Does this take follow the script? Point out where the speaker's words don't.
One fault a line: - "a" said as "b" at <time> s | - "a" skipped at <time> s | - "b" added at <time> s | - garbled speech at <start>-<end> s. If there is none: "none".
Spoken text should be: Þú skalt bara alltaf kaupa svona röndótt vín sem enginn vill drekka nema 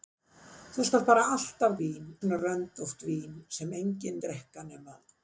- "kaupa" said as "vín" at 1.8 s
- "vill" skipped at 4.2 s